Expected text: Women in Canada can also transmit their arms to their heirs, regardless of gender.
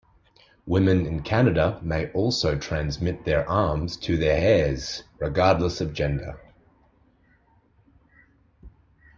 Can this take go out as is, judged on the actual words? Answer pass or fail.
fail